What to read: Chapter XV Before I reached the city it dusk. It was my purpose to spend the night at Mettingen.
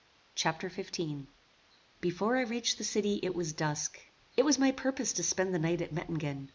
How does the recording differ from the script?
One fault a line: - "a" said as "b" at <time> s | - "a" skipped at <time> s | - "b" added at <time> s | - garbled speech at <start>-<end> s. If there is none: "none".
- "was" added at 3.4 s